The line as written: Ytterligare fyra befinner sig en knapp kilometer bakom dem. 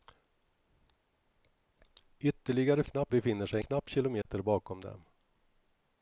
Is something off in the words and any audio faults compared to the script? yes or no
yes